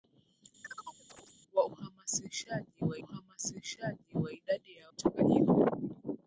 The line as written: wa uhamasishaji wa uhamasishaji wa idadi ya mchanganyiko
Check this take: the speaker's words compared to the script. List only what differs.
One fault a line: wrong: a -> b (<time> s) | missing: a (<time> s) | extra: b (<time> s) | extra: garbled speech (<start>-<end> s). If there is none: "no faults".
no faults